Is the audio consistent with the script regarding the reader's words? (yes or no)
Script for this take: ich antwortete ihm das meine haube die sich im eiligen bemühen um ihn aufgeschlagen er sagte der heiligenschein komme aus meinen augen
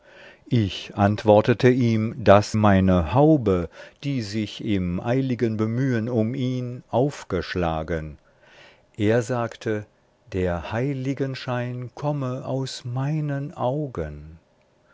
yes